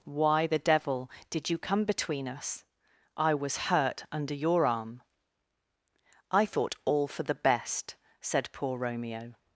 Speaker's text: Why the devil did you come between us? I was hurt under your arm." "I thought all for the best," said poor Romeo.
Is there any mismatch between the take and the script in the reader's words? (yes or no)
no